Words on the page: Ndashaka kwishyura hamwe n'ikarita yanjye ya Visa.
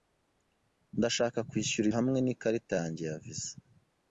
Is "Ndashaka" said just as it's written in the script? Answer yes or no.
yes